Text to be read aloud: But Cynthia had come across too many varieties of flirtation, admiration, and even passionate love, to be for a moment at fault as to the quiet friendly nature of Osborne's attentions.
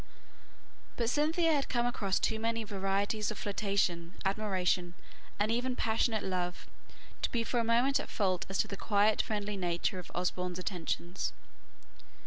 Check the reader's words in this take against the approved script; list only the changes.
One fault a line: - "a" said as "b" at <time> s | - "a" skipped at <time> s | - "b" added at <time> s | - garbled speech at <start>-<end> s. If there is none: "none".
none